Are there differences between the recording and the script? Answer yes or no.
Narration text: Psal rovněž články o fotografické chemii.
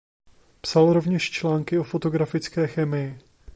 no